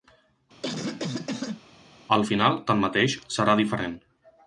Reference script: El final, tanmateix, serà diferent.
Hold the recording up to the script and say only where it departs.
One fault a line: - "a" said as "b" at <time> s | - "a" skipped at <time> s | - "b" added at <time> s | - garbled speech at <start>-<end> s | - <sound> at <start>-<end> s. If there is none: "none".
- cough at 0.6-1.6 s